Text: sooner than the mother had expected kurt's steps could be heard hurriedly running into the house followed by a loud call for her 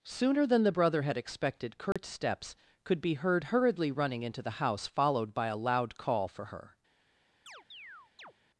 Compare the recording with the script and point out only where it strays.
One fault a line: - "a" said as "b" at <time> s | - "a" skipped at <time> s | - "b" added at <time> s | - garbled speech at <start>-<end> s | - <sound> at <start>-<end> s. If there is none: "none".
- "mother" said as "brother" at 0.7 s
- dropout at 1.9-2.0 s
- chirp at 7.5-8.3 s